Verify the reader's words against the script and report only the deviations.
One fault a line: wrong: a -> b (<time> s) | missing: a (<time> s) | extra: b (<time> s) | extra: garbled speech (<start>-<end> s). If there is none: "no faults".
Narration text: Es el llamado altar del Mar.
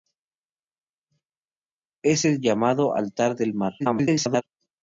extra: garbled speech (3.8-4.4 s)